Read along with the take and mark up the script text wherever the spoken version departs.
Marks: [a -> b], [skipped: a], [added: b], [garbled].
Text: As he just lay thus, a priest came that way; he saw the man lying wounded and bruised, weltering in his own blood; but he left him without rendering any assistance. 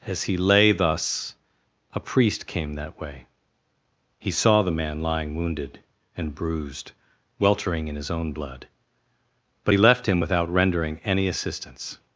As he [skipped: just] lay thus, a priest came that way; he saw the man lying wounded and bruised, weltering in his own blood; but he left him without rendering any assistance.